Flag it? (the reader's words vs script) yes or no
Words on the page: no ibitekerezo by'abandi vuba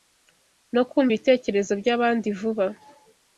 yes